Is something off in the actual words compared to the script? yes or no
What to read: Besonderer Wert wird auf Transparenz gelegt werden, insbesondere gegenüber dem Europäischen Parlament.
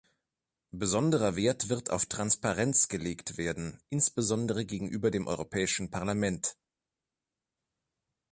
no